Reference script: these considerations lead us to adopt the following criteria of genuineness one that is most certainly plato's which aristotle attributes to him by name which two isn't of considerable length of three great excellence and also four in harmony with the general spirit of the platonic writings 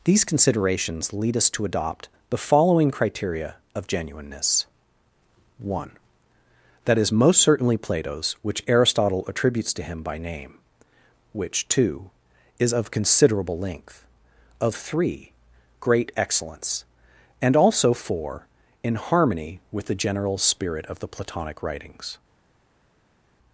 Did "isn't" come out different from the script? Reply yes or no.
yes